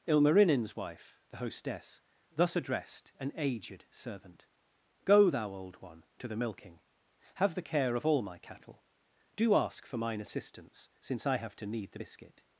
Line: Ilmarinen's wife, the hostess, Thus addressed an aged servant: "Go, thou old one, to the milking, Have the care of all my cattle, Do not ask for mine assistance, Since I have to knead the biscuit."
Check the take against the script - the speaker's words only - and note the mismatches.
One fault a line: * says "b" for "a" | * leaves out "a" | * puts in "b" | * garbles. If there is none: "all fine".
* leaves out "not"